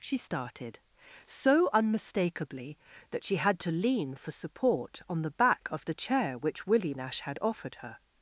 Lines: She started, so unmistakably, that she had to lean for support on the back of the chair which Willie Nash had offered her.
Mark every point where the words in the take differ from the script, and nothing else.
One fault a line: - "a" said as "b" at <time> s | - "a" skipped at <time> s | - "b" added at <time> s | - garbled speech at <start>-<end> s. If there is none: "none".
none